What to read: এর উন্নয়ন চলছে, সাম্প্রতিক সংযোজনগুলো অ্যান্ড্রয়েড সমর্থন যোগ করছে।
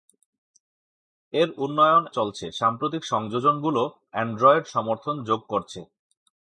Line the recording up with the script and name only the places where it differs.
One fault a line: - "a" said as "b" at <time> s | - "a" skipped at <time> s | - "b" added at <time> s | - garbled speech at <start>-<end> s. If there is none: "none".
none